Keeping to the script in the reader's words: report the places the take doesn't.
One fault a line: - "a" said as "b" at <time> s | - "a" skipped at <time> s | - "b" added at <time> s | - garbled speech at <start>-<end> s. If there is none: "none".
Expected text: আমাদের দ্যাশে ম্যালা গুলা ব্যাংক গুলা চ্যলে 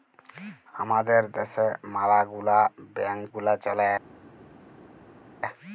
none